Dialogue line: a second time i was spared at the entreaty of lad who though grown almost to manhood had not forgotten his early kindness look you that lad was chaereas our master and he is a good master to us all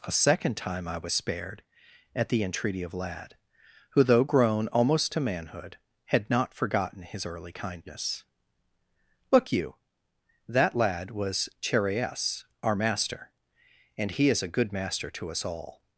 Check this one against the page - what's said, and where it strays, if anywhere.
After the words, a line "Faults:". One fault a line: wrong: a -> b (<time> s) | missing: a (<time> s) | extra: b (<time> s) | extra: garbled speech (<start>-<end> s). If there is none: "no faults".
a second time i was spared at the entreaty of lad who though grown almost to manhood had not forgotten his early kindness look you that lad was chaereas our master and he is a good master to us all
Faults:
no faults